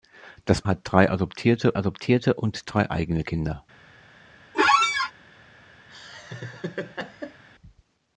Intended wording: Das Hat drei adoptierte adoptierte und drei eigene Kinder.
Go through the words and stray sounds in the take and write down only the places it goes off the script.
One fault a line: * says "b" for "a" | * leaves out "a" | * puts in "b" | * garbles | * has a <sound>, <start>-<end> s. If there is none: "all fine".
* has a squeak, 4.5-5.1 s
* has a laugh, 5.9-7.4 s